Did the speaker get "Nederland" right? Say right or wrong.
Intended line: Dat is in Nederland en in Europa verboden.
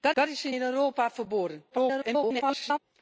wrong